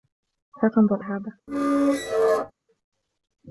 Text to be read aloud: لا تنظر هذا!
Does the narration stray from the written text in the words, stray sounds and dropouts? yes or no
yes